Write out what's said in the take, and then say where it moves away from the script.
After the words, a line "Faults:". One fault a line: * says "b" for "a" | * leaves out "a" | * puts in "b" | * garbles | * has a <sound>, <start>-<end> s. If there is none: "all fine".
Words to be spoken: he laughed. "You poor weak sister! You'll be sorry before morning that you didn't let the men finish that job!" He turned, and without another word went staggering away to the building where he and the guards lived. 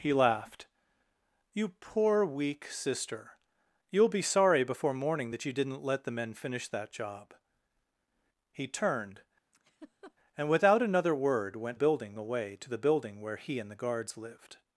he laughed. "You poor weak sister! You'll be sorry before morning that you didn't let the men finish that job!" He turned, and without another word went building away to the building where he and the guards lived.
Faults:
* has a laugh, 9.5-10.1 s
* says "building" for "staggering"